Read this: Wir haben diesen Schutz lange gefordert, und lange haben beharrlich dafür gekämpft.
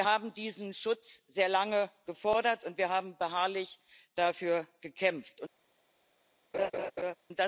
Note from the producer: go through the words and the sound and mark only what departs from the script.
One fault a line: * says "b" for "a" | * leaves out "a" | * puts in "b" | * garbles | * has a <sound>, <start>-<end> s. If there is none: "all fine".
* puts in "sehr"
* says "wir" for "lange"
* has a laugh, 6.5-7.2 s